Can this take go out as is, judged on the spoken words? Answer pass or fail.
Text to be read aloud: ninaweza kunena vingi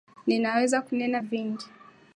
pass